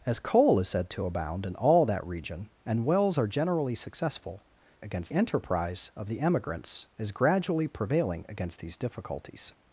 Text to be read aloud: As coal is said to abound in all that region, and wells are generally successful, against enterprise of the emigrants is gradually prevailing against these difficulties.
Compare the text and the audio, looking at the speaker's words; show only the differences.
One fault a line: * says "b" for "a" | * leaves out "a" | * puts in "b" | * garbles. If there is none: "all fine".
all fine